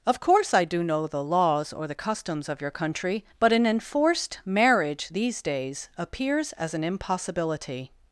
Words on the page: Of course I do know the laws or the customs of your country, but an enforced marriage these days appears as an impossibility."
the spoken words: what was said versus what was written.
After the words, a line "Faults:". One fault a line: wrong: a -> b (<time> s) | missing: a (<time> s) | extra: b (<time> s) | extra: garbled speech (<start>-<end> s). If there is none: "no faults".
Of course I do know the laws or the customs of your country, but an enforced marriage these days appears as an impossibility."
Faults:
no faults